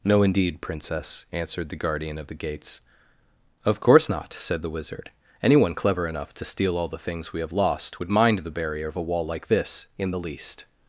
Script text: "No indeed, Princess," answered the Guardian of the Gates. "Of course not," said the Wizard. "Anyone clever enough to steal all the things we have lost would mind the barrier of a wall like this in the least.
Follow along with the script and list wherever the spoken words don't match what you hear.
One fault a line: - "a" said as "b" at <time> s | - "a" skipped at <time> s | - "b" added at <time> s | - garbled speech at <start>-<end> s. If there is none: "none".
none